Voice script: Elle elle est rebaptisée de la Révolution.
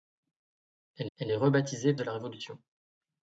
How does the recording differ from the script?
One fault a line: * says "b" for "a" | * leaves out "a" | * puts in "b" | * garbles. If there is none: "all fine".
all fine